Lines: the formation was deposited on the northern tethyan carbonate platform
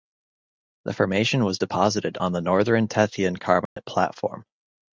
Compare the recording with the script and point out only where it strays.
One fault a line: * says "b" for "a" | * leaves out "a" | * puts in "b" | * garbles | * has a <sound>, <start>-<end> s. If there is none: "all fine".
* has a dropout, 3.7-3.8 s